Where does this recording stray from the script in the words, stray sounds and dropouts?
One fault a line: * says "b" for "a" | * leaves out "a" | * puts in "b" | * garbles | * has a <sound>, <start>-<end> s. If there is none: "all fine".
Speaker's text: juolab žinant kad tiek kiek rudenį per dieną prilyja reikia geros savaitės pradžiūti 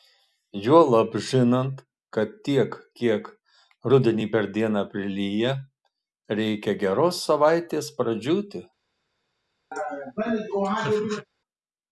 * has a laugh, 9.7-11.3 s